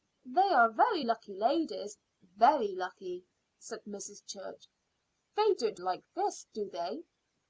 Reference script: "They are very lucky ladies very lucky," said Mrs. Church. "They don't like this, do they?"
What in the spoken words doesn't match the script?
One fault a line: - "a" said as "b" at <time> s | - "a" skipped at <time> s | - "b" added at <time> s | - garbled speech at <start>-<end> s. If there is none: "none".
none